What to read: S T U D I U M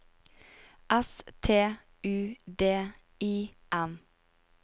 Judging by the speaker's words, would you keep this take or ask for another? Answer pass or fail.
fail